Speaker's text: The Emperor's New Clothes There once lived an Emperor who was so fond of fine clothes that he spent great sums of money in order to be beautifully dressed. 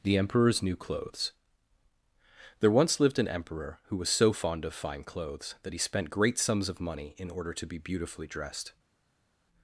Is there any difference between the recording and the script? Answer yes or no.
no